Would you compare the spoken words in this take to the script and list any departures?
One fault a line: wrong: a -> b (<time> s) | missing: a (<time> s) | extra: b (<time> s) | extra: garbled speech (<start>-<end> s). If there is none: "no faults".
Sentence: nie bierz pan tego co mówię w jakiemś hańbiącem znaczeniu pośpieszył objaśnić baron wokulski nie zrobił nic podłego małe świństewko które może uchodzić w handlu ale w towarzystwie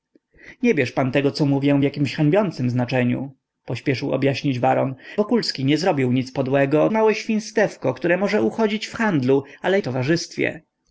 no faults